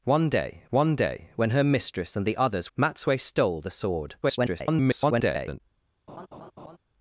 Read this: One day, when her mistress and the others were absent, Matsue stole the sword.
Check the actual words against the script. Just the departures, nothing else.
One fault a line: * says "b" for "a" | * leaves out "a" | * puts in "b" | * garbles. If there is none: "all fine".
* puts in "one day"
* leaves out "were absent"
* garbles